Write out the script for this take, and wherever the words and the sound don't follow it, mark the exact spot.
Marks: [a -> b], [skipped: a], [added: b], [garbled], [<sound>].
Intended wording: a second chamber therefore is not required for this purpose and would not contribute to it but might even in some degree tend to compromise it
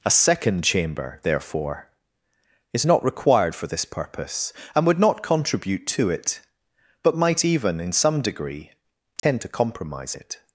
a second chamber therefore is not required for this purpose and would not contribute to it but might even in some degree tend [dropout] to compromise it